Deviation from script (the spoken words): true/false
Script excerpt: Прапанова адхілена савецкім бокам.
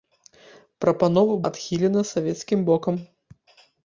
false